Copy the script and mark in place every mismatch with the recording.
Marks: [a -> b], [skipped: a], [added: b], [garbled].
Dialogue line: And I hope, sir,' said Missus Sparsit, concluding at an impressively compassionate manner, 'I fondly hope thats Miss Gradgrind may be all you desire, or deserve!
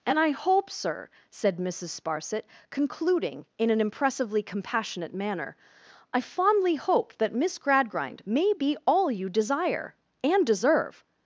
And I hope, sir,' said Missus Sparsit, concluding [at -> in] an impressively compassionate manner, 'I fondly hope [thats -> that] Miss Gradgrind may be all you desire, [or -> and] deserve!